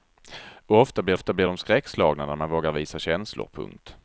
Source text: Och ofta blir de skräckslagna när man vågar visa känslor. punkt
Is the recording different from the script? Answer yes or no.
yes